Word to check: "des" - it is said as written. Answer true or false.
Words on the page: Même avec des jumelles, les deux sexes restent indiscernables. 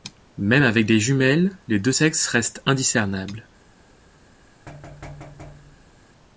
true